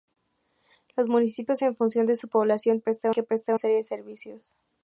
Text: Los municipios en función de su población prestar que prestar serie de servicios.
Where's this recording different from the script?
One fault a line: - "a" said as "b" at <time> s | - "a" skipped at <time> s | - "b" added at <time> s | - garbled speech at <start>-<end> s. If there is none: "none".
none